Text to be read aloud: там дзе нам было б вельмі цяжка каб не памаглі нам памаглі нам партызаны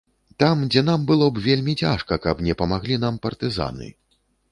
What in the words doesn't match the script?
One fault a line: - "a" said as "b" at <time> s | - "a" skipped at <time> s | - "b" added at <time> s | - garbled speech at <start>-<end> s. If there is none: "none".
- "памаглі нам" skipped at 3.2 s